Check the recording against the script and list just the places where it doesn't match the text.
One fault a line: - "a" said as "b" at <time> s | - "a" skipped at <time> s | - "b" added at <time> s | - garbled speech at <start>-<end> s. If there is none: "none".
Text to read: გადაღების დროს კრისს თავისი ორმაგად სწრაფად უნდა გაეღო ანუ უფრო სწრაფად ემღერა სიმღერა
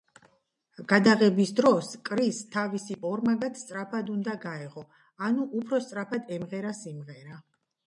none